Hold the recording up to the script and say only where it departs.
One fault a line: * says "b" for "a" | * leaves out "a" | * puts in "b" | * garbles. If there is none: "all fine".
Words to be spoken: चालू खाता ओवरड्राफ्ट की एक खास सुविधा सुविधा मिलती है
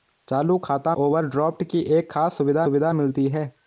all fine